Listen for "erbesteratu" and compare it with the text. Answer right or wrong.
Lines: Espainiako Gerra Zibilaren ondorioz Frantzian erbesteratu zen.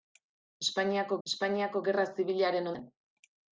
wrong